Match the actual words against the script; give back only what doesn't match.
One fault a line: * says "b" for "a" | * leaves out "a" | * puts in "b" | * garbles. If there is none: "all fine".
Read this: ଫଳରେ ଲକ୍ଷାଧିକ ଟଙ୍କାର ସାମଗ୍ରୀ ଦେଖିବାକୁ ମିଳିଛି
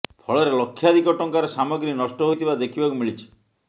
* puts in "ନଷ୍ଟ ହୋଇଥିବା"